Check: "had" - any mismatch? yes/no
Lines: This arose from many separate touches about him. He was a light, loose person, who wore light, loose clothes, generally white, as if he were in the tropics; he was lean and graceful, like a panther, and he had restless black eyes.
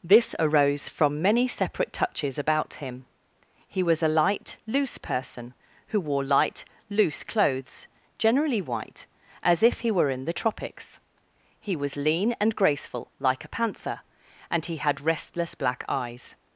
no